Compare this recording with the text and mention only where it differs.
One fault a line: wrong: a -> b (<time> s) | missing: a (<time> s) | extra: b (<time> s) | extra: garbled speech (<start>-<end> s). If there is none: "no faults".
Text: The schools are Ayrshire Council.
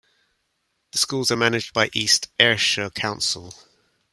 extra: managed by East (1.3 s)